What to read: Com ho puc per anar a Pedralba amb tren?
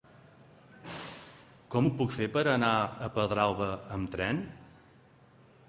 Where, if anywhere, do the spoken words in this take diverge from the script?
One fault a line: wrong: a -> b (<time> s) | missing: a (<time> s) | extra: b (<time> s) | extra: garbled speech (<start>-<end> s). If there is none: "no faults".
extra: fer (2.2 s)